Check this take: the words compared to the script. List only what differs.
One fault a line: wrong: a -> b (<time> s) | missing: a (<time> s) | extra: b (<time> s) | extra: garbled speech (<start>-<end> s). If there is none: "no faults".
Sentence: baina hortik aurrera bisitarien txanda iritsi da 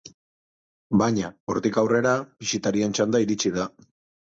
no faults